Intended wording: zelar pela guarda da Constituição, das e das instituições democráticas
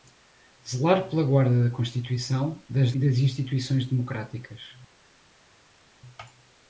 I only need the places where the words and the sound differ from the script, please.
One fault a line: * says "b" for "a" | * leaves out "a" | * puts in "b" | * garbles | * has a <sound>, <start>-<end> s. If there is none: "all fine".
all fine